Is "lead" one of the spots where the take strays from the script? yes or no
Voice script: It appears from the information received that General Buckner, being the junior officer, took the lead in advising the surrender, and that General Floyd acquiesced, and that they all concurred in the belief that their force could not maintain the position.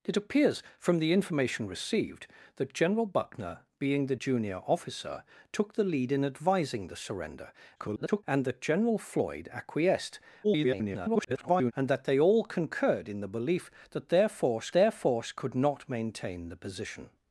no